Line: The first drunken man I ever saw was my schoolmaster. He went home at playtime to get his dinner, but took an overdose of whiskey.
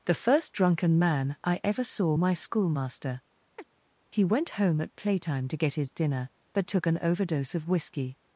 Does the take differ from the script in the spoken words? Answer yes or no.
yes